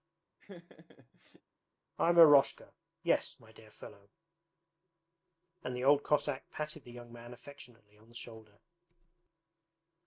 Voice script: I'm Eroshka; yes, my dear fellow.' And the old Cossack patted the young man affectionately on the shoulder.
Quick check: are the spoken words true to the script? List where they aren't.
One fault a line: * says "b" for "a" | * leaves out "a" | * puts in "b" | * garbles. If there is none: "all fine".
all fine